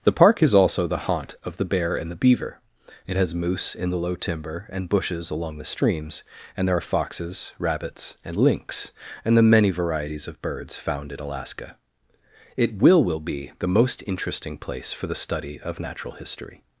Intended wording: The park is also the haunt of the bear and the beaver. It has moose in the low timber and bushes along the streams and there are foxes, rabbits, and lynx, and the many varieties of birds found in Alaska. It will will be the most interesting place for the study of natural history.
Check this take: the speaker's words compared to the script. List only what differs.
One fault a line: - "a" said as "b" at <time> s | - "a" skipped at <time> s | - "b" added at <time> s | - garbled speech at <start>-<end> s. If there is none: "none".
none